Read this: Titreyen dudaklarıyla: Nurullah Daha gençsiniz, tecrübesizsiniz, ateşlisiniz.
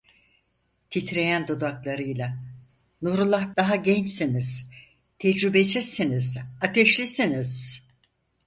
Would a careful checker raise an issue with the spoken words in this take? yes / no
no